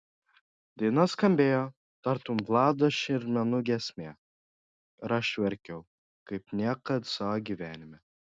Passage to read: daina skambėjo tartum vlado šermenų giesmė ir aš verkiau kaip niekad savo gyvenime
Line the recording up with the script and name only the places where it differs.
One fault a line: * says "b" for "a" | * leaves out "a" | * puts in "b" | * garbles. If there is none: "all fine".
all fine